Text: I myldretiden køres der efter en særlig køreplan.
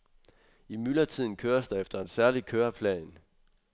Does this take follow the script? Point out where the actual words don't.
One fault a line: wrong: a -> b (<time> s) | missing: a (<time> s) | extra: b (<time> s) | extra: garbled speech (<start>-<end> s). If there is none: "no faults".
no faults